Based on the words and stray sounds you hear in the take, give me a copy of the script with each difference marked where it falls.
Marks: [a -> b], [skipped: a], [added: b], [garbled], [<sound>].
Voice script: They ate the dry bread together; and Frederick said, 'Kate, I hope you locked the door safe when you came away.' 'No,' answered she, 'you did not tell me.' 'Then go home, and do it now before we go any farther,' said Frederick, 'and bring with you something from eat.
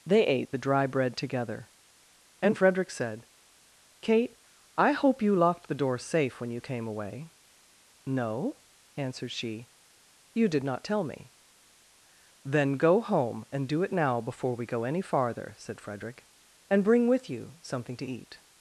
They ate the dry bread together; and Frederick said, 'Kate, I hope you locked the door safe when you came away.' 'No,' answered she, 'you did not tell me.' 'Then go home, and do it now before we go any farther,' said Frederick, 'and bring with you something [from -> to] eat.